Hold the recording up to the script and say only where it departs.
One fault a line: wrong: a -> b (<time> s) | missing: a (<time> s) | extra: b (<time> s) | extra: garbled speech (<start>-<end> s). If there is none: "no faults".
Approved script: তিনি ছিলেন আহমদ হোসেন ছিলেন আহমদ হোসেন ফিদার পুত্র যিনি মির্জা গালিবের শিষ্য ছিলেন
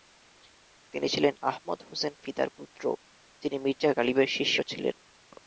missing: ছিলেন আহমদ হোসেন (2.1 s)